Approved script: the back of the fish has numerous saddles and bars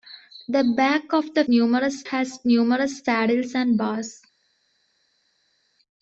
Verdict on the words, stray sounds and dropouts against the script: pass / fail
fail